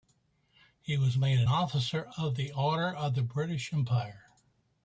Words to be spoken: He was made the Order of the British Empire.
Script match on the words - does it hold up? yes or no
no